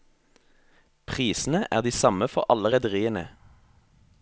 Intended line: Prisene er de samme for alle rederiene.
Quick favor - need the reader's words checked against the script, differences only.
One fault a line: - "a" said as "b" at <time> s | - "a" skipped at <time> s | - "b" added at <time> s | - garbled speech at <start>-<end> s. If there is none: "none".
none